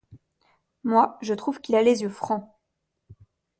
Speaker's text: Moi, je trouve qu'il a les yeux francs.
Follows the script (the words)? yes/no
yes